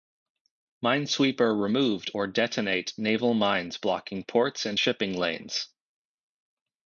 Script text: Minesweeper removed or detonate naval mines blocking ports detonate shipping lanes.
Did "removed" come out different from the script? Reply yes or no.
no